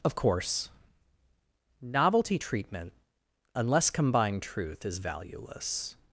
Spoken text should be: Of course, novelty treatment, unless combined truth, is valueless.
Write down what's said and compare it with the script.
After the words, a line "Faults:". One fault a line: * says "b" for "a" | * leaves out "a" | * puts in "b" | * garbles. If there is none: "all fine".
Of course, novelty treatment, unless combined truth, is valueless.
Faults:
all fine